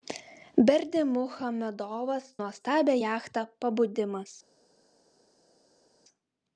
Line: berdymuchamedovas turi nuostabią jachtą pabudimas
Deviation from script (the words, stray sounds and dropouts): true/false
true